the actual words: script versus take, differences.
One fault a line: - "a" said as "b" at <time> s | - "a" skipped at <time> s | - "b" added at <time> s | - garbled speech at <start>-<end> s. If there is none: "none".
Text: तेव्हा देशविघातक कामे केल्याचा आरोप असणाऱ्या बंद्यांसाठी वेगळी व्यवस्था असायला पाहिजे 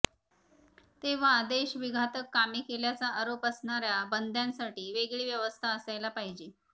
none